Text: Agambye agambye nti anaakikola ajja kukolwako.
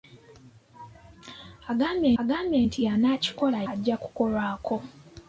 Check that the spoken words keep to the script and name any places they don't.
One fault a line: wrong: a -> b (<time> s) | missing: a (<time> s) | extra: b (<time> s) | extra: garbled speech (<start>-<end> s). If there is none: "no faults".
no faults